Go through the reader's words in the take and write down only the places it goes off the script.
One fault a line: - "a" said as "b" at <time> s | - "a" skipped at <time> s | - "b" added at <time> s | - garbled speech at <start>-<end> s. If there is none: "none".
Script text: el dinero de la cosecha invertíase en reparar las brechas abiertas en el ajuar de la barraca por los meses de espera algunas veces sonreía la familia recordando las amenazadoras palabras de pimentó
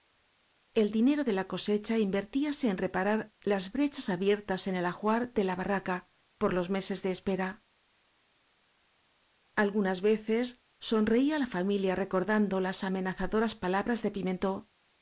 none